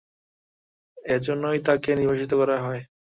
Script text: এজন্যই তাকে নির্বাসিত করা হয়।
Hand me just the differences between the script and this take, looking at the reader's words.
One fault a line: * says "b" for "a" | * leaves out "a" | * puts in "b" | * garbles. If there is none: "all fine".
all fine